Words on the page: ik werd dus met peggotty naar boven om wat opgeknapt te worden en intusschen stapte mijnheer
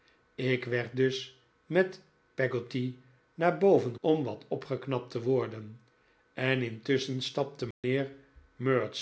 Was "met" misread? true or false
false